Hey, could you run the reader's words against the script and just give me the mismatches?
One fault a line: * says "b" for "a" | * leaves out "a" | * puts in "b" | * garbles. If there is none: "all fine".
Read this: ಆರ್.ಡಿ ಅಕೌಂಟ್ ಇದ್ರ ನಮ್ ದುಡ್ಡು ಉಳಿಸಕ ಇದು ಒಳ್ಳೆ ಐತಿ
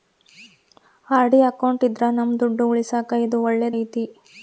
all fine